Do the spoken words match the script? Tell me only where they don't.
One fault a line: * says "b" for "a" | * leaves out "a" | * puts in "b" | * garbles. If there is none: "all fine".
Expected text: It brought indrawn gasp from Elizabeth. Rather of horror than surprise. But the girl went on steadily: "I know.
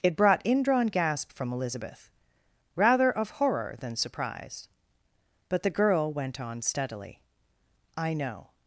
all fine